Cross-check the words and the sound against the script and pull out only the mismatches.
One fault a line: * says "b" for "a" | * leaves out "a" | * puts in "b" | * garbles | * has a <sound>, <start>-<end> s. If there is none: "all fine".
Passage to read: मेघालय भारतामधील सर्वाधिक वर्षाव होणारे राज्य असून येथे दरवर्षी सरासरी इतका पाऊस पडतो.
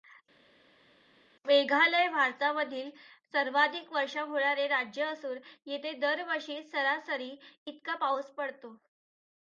all fine